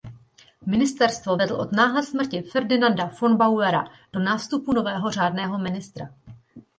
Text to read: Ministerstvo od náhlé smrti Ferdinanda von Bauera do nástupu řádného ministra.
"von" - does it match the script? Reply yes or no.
yes